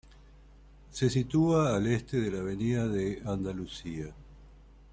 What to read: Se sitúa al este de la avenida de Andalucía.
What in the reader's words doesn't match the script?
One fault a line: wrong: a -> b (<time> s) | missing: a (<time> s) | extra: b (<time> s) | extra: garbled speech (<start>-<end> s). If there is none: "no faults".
no faults